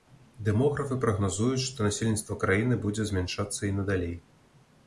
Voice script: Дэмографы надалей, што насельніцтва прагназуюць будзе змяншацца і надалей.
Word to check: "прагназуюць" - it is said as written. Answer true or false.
false